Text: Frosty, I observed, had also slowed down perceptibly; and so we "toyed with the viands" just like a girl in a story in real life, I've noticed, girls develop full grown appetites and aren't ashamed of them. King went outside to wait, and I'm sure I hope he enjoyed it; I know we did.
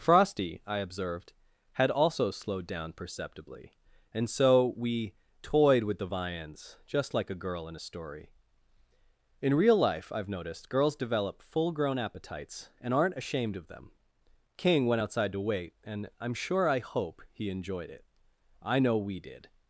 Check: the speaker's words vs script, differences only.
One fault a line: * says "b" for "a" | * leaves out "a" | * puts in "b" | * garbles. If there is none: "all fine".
all fine